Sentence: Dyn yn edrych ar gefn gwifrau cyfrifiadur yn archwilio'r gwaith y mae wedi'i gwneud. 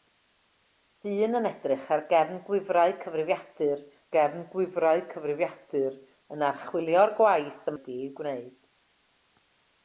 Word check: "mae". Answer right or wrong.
wrong